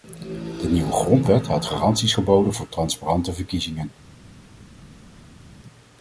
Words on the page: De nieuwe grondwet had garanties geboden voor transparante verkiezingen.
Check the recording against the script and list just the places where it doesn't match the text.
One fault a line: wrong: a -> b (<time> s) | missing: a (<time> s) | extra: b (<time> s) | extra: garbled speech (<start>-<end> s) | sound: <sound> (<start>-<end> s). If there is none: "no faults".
no faults